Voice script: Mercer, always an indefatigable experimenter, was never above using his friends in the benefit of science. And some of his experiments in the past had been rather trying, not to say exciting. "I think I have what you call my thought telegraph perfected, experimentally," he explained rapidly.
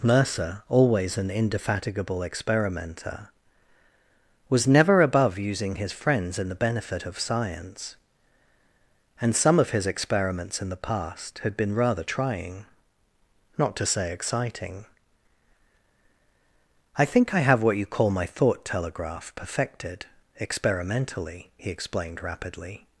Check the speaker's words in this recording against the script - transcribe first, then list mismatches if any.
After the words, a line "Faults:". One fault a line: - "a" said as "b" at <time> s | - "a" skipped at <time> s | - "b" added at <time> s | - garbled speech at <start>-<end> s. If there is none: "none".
Mercer, always an indefatigable experimenter, was never above using his friends in the benefit of science. And some of his experiments in the past had been rather trying, not to say exciting. "I think I have what you call my thought telegraph perfected, experimentally," he explained rapidly.
Faults:
none